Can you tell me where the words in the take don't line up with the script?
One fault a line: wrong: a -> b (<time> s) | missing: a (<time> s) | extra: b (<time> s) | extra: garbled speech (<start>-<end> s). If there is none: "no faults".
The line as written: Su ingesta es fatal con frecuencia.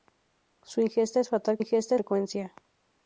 wrong: con -> ingesta (1.6 s)